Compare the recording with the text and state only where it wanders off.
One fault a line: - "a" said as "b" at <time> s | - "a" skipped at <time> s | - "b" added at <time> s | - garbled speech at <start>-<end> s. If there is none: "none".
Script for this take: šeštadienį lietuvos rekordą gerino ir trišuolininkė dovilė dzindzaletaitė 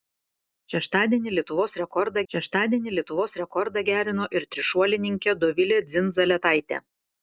- "šeštadienį lietuvos rekordą" added at 2.3 s